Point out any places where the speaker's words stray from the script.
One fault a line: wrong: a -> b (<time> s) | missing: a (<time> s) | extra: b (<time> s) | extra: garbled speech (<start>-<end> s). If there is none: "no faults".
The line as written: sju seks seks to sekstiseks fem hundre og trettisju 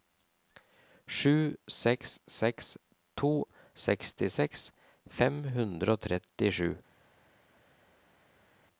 no faults